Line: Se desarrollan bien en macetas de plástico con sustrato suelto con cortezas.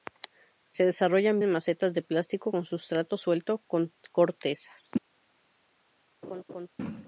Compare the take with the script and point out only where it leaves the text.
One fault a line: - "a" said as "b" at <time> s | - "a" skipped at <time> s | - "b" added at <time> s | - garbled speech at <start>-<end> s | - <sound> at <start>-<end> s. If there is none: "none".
- "bien" skipped at 1.4 s
- laugh at 6.2-6.7 s